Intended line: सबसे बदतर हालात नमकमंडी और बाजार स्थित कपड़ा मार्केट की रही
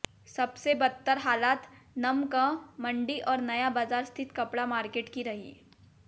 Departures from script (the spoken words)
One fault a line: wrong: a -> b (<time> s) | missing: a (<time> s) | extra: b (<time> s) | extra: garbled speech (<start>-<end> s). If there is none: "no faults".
extra: नया (3.4 s)